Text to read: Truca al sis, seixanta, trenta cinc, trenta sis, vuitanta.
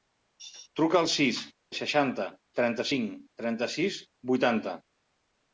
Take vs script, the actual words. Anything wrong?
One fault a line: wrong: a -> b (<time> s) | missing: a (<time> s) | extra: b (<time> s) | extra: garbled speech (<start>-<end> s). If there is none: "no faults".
no faults